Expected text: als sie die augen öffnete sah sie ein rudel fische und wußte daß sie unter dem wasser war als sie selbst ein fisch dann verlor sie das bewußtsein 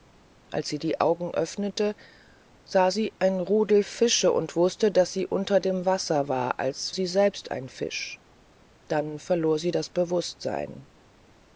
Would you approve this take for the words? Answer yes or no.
yes